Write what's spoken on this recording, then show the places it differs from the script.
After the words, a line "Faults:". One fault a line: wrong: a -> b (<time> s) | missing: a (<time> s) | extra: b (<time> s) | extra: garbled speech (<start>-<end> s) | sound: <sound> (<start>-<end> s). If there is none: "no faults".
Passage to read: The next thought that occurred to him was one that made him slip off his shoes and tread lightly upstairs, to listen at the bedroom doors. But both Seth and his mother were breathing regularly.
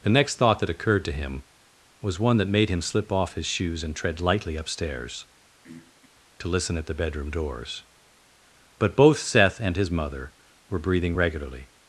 The next thought that occurred to him was one that made him slip off his shoes and tread lightly upstairs, to listen at the bedroom doors. But both Seth and his mother were breathing regularly.
Faults:
sound: throat clearing (5.6-6.1 s)